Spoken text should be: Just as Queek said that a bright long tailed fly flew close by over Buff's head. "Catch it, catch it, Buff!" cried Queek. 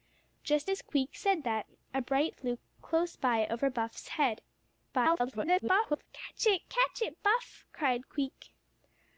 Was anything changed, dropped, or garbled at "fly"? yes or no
yes